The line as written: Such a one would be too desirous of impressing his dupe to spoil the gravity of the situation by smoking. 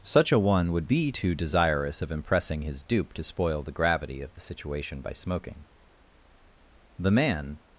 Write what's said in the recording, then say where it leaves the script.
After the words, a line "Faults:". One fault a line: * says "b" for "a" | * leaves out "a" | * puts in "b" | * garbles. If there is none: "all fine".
Such a one would be too desirous of impressing his dupe to spoil the gravity of the situation by smoking. The man
Faults:
* puts in "The man"